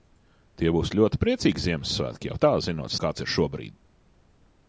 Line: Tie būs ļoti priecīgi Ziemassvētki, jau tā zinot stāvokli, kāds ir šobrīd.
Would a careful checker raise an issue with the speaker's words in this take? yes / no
yes